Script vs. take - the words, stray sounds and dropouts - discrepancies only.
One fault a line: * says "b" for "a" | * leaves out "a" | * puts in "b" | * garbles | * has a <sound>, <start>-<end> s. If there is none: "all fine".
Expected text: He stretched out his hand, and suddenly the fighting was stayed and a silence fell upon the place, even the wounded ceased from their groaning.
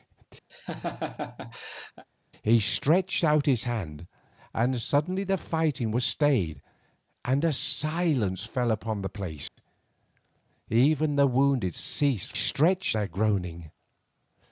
* has a laugh, 0.5-2.0 s
* has a dropout, 9.5-9.6 s
* says "stretched" for "from"